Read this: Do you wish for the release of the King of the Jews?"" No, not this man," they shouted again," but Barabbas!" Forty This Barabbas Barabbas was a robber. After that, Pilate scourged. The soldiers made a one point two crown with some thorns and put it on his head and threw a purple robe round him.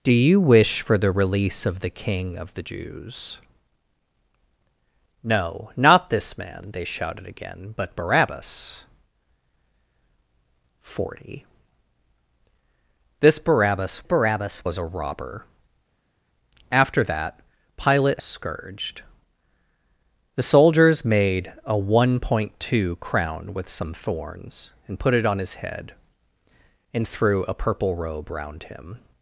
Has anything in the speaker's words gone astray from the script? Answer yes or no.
no